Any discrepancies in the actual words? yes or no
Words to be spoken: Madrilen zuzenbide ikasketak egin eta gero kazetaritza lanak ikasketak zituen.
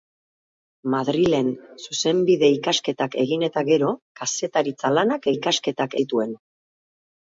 no